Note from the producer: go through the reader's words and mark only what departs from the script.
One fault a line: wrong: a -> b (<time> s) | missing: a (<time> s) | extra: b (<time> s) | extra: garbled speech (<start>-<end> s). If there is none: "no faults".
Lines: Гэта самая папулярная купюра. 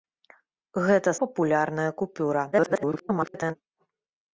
missing: самая (1.1 s)
extra: garbled speech (2.5-3.5 s)